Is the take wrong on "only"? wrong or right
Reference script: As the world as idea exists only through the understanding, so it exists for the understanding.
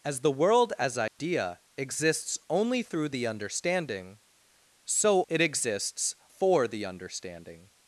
right